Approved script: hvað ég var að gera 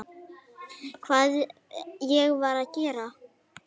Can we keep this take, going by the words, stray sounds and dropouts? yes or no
yes